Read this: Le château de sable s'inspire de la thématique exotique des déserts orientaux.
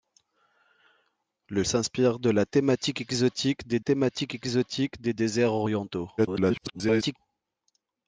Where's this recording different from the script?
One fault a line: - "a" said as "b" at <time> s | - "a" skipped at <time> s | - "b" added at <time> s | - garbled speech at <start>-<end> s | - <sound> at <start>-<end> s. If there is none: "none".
- "château" said as "s'inspire" at 1.7 s
- "sable s'inspire de la" said as "la thématique exotique des" at 2.3 s
- garbled speech at 6.2-7.2 s